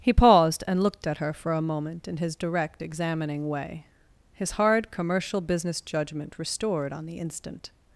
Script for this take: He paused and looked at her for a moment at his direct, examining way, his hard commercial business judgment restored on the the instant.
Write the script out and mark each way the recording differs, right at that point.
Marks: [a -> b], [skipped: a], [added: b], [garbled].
He paused and looked at her for a moment [at -> in] his direct, examining way, his hard commercial business judgment restored on the [skipped: the] instant.